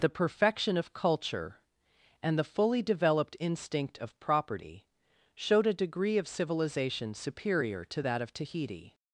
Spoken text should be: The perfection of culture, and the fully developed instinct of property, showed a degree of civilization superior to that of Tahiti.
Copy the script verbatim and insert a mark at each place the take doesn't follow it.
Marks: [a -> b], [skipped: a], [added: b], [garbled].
The perfection of culture, and the fully developed instinct of property, showed a degree of civilization superior to that of Tahiti.